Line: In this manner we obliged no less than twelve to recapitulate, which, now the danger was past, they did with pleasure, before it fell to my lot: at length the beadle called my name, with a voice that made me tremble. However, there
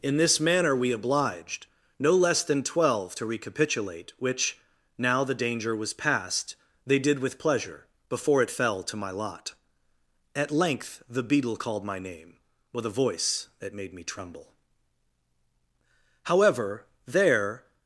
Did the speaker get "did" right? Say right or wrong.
right